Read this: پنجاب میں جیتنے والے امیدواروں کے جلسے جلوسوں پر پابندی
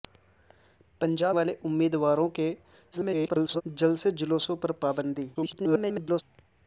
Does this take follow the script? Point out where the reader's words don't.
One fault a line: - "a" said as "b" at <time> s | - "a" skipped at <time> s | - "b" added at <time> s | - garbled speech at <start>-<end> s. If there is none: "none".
- "میں جیتنے" skipped at 1.4 s
- garbled speech at 2.9-3.6 s
- garbled speech at 5.3-6.2 s